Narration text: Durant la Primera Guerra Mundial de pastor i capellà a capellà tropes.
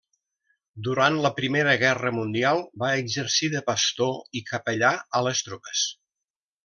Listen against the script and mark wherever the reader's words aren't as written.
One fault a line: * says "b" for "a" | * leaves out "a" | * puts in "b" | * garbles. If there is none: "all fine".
* puts in "va exercir"
* says "les" for "capellà"